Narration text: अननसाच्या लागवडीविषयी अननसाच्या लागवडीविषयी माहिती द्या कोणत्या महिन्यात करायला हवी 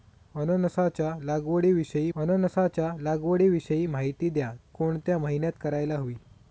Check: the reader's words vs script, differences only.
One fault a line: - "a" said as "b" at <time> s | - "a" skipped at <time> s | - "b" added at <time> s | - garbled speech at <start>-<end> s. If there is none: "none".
none